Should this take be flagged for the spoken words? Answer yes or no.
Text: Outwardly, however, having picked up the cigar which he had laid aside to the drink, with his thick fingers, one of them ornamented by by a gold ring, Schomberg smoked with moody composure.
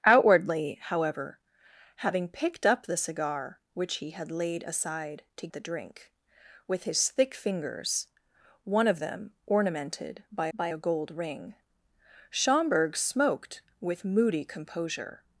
no